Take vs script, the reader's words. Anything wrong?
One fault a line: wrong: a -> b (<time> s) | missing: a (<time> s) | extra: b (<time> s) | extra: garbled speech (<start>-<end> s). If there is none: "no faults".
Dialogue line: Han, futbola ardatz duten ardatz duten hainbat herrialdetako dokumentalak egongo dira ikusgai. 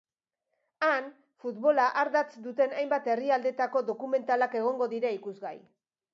missing: ardatz duten (2.7 s)